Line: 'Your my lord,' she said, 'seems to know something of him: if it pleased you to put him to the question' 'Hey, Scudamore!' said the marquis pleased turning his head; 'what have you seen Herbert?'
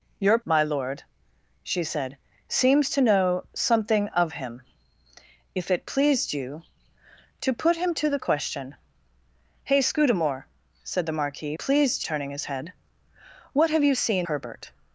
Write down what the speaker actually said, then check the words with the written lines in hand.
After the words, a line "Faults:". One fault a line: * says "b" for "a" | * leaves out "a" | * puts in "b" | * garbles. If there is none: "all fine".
'Your my lord,' she said, 'seems to know something of him: if it pleased you to put him to the question' 'Hey, Scudamore!' said the marquis pleased turning his head; 'what have you seen Herbert?'
Faults:
all fine